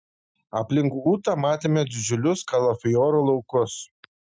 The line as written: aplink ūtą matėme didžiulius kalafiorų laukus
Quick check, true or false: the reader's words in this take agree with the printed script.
true